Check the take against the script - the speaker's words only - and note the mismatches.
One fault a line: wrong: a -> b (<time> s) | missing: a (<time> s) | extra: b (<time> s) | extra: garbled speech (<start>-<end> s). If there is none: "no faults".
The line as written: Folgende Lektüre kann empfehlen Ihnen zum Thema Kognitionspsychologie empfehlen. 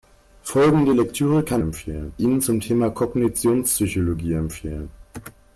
no faults